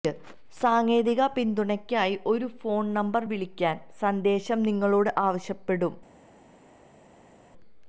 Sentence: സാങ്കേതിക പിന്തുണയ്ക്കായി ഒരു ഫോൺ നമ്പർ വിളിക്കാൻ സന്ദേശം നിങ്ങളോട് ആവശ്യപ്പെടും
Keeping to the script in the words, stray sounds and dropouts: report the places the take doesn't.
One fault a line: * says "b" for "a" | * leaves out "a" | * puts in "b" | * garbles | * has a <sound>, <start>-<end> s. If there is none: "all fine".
all fine